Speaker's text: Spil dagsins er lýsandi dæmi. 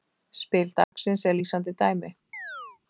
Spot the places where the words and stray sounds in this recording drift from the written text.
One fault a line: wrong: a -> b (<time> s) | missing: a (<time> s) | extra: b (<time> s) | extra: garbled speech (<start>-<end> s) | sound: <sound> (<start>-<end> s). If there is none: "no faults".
sound: dropout (0.8-0.9 s)
sound: chirp (2.3-2.8 s)